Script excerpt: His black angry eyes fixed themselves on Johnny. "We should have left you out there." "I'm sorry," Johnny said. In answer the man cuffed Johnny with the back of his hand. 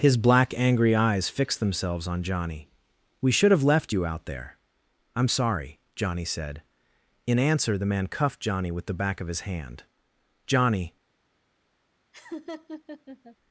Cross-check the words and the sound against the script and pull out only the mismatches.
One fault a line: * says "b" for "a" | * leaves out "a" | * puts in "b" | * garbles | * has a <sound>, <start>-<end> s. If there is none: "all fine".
* puts in "Johnny"
* has a laugh, 12.1-13.4 s